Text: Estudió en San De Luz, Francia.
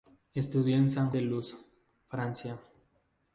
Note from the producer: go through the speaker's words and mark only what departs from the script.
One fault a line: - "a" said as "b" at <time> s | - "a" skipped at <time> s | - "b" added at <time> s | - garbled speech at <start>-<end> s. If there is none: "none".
none